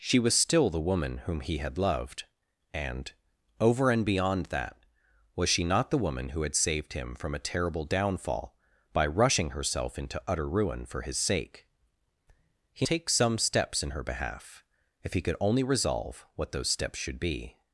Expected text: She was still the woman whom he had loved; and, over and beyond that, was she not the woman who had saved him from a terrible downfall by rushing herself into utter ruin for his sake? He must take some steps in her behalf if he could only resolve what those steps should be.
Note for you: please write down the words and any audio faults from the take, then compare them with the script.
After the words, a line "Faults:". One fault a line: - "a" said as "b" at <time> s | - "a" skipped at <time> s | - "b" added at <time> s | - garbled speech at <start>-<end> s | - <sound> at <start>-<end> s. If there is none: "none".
She was still the woman whom he had loved; and, over and beyond that, was she not the woman who had saved him from a terrible downfall by rushing herself into utter ruin for his sake? He take some steps in her behalf if he could only resolve what those steps should be.
Faults:
- "must" skipped at 12.9 s